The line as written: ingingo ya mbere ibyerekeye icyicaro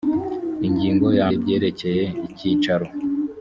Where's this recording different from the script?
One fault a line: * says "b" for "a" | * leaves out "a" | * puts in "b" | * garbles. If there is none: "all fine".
* leaves out "mbere"